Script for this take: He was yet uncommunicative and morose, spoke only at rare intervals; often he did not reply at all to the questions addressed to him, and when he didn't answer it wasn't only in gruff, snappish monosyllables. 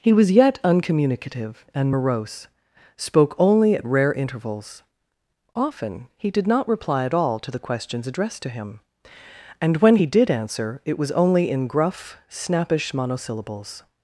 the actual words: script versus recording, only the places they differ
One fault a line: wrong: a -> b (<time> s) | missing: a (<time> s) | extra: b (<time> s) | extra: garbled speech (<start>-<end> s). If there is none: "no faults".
wrong: didn't -> did (10.0 s)
wrong: wasn't -> was (11.0 s)